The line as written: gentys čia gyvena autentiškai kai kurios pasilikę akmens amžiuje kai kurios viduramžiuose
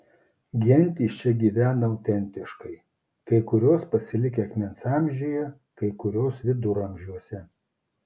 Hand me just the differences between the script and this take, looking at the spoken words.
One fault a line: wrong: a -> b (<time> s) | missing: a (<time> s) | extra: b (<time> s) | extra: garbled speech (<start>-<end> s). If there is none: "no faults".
no faults